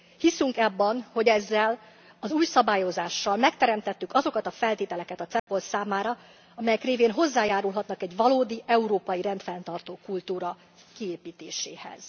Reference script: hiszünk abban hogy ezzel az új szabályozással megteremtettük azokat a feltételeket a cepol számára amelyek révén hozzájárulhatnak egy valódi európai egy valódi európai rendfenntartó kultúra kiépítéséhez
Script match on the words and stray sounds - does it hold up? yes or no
no